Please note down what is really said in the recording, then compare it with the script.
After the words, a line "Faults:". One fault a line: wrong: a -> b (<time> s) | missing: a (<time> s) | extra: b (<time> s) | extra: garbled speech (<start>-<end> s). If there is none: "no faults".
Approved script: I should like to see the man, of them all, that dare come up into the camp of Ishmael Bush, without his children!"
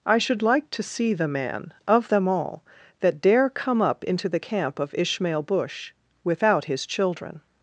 I should like to see the man, of them all, that dare come up into the camp of Ishmael Bush, without his children!"
Faults:
no faults